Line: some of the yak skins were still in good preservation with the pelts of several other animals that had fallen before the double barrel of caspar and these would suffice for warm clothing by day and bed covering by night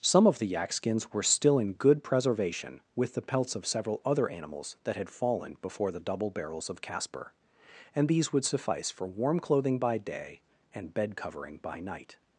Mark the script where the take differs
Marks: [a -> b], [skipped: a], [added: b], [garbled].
some of the yak skins were still in good preservation with the pelts of several other animals that had fallen before the double [barrel -> barrels] of caspar and these would suffice for warm clothing by day and bed covering by night